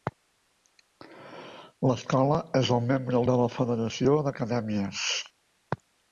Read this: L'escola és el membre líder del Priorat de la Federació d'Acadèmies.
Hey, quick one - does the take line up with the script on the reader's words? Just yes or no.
no